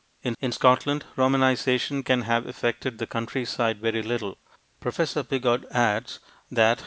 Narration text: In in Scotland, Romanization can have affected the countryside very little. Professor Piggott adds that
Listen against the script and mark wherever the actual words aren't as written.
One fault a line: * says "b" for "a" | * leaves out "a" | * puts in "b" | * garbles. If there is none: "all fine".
all fine